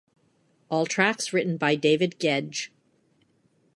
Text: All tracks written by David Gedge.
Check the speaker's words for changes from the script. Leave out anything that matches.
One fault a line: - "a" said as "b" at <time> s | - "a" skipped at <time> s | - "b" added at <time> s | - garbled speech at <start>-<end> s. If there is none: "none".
none